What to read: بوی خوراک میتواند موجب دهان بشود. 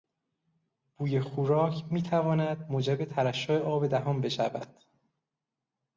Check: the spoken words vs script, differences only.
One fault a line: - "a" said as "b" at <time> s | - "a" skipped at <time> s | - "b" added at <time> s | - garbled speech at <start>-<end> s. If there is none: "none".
- "ترشح آب" added at 3.0 s